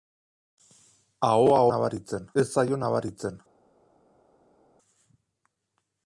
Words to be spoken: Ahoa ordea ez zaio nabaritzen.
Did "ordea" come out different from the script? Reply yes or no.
yes